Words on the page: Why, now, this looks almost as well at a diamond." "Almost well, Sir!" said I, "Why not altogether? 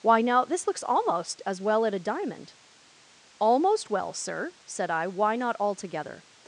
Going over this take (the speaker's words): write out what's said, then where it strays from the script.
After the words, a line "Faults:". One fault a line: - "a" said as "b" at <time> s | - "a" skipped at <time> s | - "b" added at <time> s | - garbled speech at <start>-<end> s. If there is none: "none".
Why, now, this looks almost as well at a diamond." "Almost well, Sir!" said I, "Why not altogether?
Faults:
none